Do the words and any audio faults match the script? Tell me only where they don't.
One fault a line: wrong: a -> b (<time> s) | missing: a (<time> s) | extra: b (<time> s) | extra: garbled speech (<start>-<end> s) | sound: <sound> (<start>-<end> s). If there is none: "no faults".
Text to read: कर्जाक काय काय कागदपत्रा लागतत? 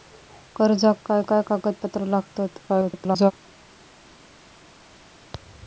extra: garbled speech (2.7-3.3 s)